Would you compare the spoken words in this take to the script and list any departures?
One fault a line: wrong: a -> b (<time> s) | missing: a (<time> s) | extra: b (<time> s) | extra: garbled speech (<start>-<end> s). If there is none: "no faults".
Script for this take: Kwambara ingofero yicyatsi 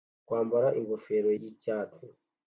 no faults